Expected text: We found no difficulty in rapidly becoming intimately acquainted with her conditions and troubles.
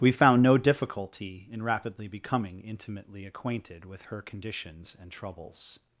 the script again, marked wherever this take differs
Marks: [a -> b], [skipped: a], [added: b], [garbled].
We found no difficulty in rapidly becoming intimately acquainted with her conditions and troubles.